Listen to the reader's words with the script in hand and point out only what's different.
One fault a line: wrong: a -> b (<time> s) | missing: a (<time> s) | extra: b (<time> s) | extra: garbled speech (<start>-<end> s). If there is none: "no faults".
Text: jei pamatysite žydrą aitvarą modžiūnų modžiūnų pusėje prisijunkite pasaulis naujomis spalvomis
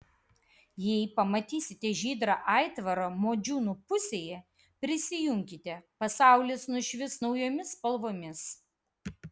missing: modžiūnų (3.8 s)
extra: nušvis (6.8 s)